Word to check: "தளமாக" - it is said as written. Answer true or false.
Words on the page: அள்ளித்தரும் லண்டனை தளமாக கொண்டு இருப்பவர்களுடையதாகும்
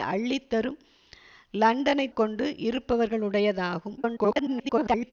false